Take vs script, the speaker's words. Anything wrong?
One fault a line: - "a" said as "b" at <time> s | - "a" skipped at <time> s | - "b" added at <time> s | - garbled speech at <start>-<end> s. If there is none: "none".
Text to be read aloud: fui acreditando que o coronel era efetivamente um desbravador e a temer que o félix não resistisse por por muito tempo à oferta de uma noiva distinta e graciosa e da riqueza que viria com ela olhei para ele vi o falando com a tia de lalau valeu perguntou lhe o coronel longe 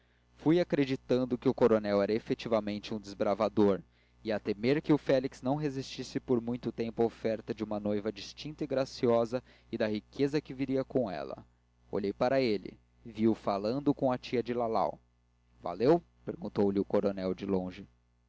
- "por" skipped at 6.4 s
- "de" added at 17.3 s